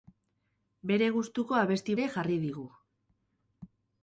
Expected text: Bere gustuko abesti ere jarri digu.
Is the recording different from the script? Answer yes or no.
no